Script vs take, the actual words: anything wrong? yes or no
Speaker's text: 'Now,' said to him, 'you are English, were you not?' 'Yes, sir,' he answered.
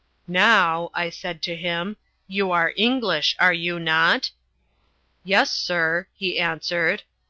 yes